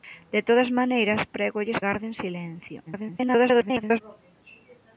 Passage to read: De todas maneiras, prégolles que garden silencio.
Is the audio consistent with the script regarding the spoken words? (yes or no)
no